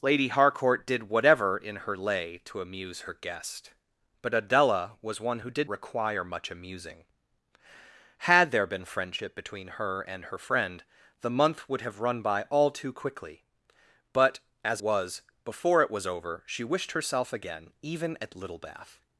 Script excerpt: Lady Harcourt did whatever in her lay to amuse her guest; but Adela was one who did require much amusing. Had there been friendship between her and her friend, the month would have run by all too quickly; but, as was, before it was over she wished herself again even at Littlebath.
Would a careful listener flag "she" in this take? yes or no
no